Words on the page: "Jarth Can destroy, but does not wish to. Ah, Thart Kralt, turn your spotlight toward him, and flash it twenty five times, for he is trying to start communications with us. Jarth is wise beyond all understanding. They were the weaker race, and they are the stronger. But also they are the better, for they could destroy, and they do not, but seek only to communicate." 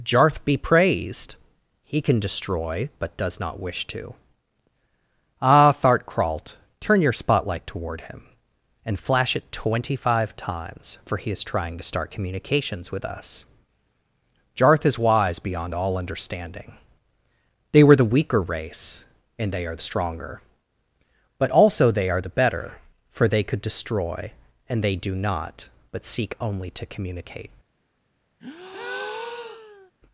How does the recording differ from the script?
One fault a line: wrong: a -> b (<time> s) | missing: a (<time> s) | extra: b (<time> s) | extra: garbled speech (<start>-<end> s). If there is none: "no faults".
extra: Be Praised He (0.5 s)